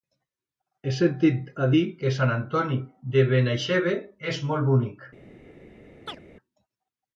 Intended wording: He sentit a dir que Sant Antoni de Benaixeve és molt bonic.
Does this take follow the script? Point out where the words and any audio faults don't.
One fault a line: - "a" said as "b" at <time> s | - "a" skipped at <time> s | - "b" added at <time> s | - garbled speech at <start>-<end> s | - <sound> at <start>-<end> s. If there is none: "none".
- chirp at 6.1-6.2 s